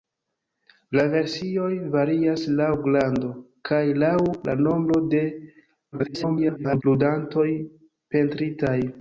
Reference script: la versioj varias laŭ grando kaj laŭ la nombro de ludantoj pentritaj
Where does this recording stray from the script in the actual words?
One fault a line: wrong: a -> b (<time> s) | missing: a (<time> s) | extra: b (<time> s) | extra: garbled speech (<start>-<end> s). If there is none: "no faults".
extra: garbled speech (5.9-6.8 s)